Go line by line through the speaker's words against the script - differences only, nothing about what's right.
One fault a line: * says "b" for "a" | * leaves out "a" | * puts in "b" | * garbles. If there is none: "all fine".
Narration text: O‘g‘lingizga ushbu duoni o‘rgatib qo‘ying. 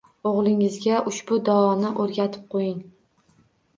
all fine